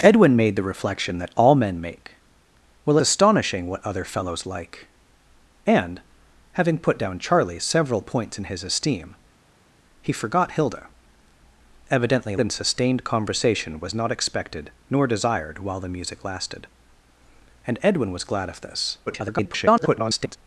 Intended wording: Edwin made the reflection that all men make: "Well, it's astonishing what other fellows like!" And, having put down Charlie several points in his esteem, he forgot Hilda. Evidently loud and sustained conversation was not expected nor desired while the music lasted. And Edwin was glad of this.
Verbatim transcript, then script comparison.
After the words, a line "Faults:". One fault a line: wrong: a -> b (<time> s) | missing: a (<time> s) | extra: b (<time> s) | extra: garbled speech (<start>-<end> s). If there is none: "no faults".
Edwin made the reflection that all men make: "Well, astonishing what other fellows like!" And, having put down Charlie several points in his esteem, he forgot Hilda. Evidently and sustained conversation was not expected nor desired while the music lasted. And Edwin was glad of this. [garbled]
Faults:
missing: it's (3.0 s)
missing: loud (12.4 s)
extra: garbled speech (19.1-20.4 s)